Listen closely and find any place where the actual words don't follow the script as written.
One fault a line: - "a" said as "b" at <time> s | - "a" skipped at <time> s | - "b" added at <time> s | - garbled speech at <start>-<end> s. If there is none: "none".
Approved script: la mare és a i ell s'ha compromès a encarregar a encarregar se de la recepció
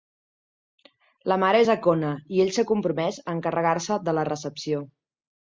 - "kona" added at 1.9 s
- "a encarregar" skipped at 3.8 s